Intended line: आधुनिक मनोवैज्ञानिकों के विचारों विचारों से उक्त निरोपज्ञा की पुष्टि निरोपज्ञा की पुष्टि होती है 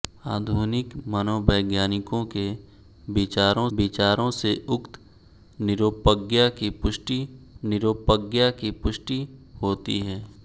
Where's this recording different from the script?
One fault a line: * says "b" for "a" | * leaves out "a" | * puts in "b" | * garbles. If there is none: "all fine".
all fine